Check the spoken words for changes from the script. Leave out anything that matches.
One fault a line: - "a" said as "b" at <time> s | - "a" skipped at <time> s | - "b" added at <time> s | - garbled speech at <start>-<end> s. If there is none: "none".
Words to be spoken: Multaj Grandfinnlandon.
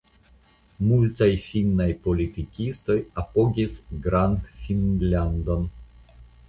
- "finnaj politikistoj apogis" added at 1.5 s